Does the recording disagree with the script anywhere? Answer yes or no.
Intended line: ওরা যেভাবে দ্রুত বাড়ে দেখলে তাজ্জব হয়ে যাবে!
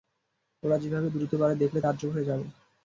no